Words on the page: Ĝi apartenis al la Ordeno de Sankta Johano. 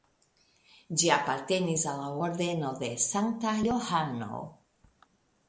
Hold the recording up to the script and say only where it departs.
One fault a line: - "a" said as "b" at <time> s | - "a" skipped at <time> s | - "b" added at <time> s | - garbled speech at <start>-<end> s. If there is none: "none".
none